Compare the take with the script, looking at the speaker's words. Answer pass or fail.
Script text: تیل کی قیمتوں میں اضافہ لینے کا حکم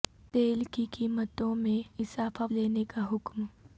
pass